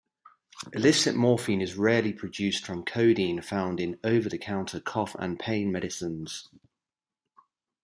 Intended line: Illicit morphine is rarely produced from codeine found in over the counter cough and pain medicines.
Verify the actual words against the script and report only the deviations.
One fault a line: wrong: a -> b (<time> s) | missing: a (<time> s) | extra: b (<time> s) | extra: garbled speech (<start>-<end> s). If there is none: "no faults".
no faults